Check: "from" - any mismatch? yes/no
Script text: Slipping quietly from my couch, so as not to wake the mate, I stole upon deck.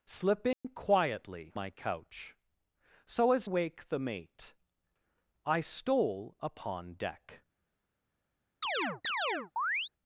yes